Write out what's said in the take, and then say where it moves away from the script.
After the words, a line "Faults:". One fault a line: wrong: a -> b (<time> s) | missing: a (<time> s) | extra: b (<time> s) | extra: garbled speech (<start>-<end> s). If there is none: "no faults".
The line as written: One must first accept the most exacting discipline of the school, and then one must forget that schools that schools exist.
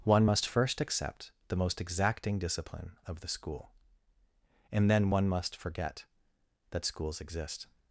One must first accept the most exacting discipline of the school, and then one must forget that schools exist.
Faults:
missing: that schools (7.2 s)